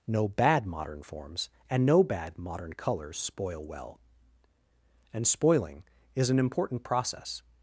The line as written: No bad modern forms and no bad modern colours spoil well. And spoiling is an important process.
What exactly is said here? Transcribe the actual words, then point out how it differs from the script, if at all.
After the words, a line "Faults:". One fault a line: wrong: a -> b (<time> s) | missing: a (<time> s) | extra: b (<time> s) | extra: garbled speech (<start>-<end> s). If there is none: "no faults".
No bad modern forms and no bad modern colours spoil well. And spoiling is an important process.
Faults:
no faults